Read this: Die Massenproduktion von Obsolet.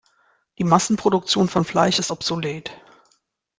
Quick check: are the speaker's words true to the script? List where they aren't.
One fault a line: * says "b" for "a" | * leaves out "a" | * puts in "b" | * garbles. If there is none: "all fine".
* puts in "Fleisch ist"